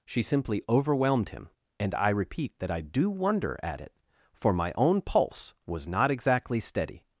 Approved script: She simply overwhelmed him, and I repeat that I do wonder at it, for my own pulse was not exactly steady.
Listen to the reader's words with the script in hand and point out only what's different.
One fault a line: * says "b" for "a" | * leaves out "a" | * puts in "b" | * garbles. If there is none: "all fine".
all fine